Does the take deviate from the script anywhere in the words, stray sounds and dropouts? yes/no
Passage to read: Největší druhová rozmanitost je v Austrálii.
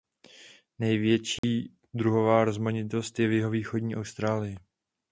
yes